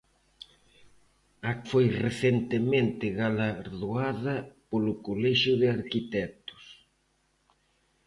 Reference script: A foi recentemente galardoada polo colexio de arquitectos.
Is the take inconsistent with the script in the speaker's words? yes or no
no